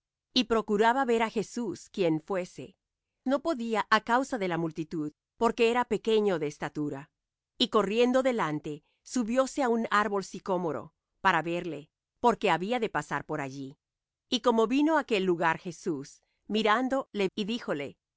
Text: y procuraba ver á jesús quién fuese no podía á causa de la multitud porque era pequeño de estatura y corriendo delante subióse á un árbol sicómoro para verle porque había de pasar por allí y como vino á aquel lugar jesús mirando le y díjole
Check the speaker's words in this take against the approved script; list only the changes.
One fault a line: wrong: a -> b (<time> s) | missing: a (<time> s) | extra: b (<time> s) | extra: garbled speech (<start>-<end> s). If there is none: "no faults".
no faults